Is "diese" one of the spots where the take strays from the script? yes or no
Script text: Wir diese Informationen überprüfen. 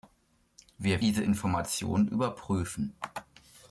no